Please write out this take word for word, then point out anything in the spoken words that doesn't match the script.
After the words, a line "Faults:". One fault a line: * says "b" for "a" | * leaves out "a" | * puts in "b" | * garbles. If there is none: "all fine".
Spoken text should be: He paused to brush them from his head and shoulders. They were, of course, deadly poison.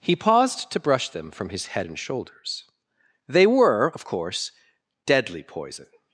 He paused to brush them from his head and shoulders. They were, of course, deadly poison.
Faults:
all fine